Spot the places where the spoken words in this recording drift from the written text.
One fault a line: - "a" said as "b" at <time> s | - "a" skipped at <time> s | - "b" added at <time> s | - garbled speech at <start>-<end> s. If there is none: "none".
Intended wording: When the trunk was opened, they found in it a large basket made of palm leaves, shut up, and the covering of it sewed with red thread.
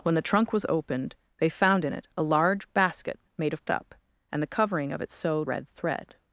- "palm leaves shut" skipped at 3.6 s
- "with" skipped at 5.5 s